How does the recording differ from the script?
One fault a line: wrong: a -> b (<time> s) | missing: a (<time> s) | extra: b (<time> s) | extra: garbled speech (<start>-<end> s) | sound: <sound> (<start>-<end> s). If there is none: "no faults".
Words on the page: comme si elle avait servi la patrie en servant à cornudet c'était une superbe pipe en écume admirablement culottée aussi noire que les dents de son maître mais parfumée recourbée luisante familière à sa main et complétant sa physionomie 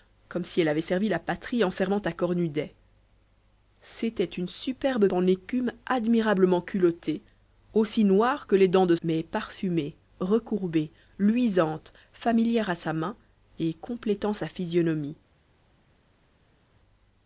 missing: pipe (5.1 s)
missing: son maître (9.0 s)